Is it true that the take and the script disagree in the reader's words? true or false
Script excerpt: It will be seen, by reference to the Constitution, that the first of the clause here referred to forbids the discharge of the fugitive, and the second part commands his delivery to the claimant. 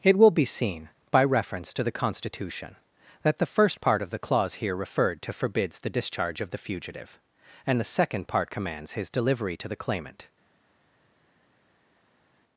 true